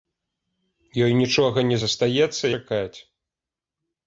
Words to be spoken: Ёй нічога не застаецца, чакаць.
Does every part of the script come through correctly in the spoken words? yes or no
yes